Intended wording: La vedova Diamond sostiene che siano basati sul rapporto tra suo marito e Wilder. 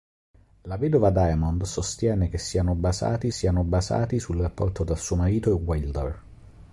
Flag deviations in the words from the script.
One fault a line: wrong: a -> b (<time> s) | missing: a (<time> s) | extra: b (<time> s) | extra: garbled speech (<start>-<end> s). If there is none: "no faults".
extra: siano basati (3.3 s)